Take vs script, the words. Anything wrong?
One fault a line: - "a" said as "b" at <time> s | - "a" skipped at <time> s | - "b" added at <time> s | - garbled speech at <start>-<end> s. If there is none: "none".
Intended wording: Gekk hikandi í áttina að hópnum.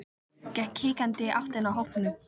none